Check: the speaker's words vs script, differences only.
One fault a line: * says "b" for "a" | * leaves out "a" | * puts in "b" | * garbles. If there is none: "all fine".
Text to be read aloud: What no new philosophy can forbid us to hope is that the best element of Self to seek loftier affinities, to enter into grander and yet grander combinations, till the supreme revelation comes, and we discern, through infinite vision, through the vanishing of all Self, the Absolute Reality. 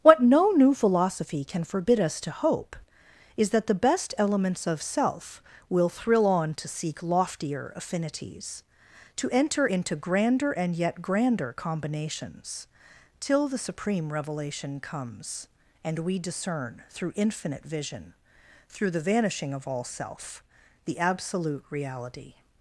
* says "elements" for "element"
* puts in "will thrill on"